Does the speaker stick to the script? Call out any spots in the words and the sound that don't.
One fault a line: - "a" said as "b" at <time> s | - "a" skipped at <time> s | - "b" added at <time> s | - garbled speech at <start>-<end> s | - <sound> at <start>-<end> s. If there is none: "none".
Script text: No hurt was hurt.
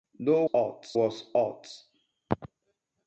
none